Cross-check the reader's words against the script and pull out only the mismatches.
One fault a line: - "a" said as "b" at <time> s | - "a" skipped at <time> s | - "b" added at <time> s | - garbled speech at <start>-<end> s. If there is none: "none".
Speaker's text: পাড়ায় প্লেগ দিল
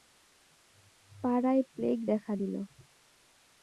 - "দেখা" added at 2.1 s